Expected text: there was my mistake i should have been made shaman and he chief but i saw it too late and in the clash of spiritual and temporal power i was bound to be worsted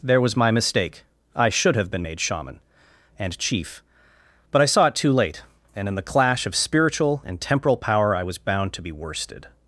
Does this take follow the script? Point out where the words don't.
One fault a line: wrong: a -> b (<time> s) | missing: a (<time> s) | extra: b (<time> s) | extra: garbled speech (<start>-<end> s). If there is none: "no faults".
missing: he (3.4 s)